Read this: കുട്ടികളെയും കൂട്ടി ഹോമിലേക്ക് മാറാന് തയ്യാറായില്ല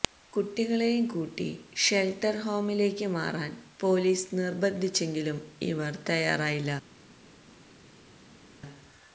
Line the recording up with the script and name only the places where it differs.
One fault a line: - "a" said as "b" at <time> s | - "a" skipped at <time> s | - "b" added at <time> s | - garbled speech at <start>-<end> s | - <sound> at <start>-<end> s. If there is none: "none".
- "ഷെല്ട്ടര്" added at 1.8 s
- "പോലീസ് നിര്ബന്ധിച്ചെങ്കിലും ഇവര്" added at 3.8 s